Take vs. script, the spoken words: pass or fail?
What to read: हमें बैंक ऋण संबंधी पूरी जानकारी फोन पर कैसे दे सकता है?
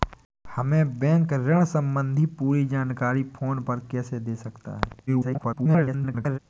fail